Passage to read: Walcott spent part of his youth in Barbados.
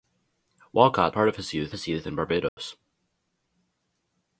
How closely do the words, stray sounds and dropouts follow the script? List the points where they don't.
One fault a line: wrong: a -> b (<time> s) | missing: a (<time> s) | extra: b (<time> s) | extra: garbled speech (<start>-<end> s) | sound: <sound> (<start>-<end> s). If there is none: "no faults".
missing: spent (1.1 s)
extra: his youth (1.7 s)
sound: dropout (2.5-2.6 s)